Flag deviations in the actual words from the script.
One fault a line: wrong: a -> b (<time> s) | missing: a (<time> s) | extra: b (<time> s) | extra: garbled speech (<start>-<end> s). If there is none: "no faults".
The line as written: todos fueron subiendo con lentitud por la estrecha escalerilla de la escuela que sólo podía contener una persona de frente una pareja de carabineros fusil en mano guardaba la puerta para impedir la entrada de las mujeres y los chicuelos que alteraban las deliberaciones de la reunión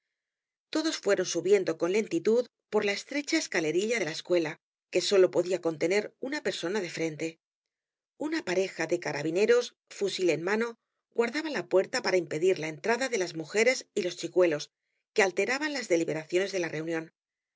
no faults